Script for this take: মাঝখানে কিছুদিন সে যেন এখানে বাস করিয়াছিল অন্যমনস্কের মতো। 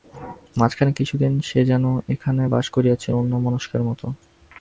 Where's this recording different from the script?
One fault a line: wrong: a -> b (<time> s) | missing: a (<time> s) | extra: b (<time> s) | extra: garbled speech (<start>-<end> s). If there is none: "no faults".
no faults